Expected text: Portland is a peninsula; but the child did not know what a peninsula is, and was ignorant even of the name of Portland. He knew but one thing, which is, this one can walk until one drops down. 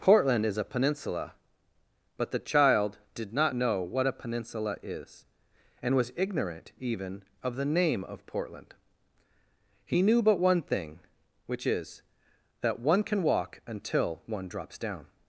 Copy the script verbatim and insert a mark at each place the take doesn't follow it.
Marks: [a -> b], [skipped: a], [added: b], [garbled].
Portland is a peninsula; but the child did not know what a peninsula is, and was ignorant even of the name of Portland. He knew but one thing, which is, [this -> that] one can walk until one drops down.